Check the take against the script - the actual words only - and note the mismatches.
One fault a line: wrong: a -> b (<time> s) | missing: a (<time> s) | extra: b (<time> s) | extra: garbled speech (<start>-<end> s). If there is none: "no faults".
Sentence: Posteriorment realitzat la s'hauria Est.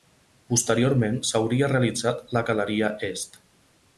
extra: s'hauria (1.3 s)
wrong: s'hauria -> galeria (2.5 s)